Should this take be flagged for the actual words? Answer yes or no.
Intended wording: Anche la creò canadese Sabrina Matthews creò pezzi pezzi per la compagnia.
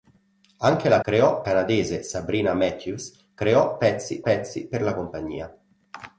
no